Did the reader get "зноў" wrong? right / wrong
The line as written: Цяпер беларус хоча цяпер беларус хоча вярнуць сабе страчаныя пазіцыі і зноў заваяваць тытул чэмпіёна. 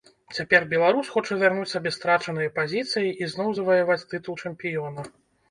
right